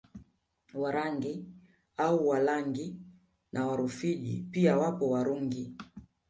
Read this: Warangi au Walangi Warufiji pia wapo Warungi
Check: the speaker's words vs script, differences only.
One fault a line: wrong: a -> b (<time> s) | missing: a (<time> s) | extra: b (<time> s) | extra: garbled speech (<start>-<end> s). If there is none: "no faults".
extra: na (3.5 s)